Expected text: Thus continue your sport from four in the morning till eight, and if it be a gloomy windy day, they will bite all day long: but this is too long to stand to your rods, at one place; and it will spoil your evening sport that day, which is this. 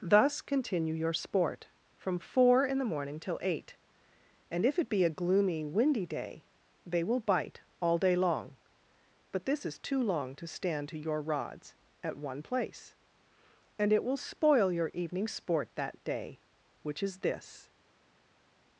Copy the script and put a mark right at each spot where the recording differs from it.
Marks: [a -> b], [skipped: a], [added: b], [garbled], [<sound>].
Thus continue your sport from four in the morning till eight, and if it be a gloomy windy day, they will bite all day long: but this is too long to stand to your rods, at one place; and it will spoil your evening sport that day, which is this.